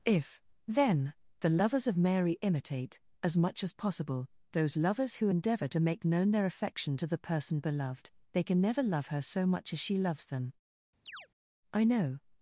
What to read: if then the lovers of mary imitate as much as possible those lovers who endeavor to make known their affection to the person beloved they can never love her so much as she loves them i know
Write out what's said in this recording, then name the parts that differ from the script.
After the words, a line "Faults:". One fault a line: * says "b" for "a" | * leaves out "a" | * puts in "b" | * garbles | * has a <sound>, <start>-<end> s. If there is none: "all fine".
if then the lovers of mary imitate as much as possible those lovers who endeavor to make known their affection to the person beloved they can never love her so much as she loves them i know
Faults:
* has a chirp, 11.1-11.3 s